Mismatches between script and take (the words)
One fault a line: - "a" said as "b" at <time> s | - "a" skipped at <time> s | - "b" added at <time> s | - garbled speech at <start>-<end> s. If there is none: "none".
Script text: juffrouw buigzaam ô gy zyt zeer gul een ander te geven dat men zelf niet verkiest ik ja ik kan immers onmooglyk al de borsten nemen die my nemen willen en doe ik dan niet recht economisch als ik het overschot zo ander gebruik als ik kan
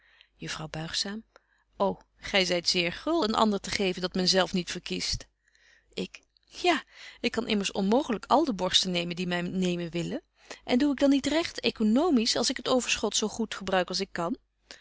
- "ander" said as "goed" at 13.3 s